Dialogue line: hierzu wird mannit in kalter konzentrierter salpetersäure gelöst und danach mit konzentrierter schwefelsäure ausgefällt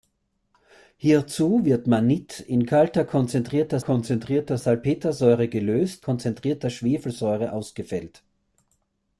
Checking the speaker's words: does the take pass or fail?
fail